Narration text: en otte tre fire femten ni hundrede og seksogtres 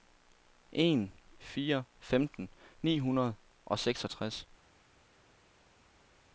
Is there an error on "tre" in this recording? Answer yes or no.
yes